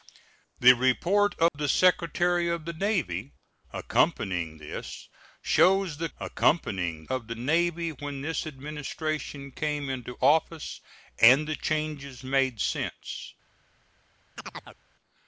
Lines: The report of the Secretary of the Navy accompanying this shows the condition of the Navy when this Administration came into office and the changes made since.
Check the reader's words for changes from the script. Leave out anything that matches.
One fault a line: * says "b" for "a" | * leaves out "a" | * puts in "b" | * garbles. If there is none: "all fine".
* says "accompanying" for "condition"